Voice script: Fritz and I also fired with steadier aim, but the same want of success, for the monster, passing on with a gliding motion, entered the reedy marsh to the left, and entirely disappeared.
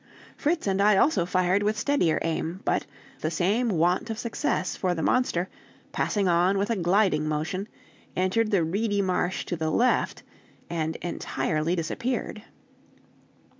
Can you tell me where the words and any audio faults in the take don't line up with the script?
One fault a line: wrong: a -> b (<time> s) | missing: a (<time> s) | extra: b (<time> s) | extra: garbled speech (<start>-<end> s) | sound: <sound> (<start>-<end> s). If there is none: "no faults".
no faults